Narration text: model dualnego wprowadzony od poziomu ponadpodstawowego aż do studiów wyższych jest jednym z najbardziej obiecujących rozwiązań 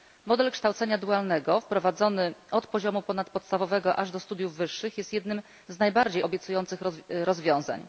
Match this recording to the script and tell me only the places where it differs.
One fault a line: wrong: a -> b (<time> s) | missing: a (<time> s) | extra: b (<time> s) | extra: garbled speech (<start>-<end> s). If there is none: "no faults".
extra: kształcenia (0.5 s)